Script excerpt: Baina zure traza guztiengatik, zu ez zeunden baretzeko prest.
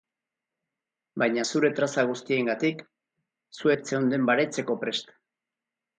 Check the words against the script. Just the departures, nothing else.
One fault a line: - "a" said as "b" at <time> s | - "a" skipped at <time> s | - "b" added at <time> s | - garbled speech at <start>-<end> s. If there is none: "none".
none